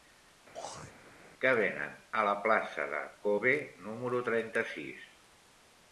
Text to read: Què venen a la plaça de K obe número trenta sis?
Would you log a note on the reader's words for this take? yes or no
no